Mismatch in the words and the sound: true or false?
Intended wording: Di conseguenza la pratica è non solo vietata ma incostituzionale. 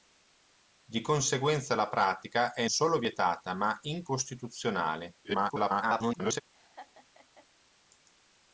true